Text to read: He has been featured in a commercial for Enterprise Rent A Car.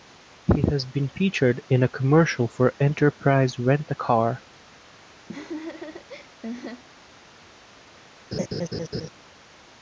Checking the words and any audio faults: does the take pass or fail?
fail